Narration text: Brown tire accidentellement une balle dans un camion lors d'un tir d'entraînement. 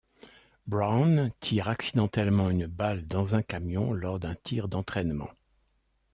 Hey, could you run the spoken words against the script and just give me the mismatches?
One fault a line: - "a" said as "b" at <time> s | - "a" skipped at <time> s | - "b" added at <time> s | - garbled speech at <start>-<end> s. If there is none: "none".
none